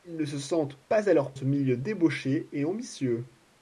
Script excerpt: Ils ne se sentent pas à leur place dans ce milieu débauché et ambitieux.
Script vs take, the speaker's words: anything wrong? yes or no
yes